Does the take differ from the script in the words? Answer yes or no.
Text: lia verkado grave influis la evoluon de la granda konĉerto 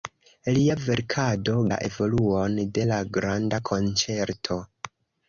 yes